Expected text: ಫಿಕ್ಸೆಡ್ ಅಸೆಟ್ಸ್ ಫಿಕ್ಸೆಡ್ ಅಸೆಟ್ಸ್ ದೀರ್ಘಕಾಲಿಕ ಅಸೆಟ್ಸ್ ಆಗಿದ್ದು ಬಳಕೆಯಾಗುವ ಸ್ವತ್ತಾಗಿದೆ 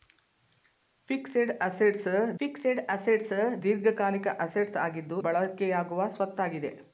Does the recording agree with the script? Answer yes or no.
yes